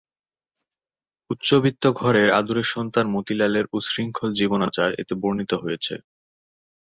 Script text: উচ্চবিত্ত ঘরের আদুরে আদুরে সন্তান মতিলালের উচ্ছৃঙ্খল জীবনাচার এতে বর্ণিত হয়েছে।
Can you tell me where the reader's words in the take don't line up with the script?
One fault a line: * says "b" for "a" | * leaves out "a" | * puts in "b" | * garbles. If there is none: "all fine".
* leaves out "আদুরে"